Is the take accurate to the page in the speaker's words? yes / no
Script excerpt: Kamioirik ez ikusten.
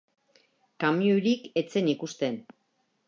no